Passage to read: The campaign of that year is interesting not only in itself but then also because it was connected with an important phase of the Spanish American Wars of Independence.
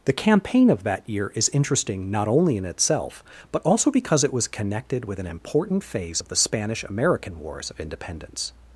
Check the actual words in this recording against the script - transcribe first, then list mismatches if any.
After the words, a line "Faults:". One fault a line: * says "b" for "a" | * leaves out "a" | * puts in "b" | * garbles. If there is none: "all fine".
The campaign of that year is interesting not only in itself but also because it was connected with an important phase of the Spanish American Wars of Independence.
Faults:
* leaves out "then"